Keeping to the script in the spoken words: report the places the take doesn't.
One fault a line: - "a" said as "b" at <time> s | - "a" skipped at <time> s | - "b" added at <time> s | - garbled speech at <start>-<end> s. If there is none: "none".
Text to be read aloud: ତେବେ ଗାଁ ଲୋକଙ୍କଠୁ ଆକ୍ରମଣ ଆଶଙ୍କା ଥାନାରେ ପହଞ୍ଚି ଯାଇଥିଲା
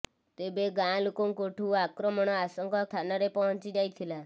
none